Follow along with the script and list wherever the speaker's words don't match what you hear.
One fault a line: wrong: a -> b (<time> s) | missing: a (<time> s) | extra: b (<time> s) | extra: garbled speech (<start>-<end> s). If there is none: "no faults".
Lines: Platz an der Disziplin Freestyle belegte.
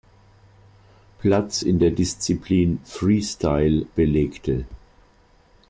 wrong: an -> in (1.6 s)